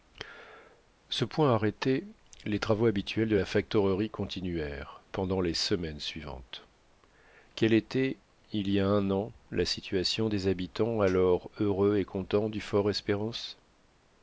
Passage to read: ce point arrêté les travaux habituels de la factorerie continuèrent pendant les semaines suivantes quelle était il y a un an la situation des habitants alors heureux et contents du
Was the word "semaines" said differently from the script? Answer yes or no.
no